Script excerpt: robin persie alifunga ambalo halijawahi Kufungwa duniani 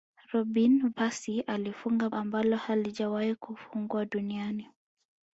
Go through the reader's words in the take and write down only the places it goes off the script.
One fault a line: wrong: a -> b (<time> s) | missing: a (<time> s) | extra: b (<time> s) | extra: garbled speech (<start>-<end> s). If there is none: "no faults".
no faults